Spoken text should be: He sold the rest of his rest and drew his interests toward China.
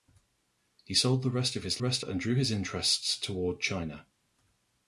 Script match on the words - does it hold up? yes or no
yes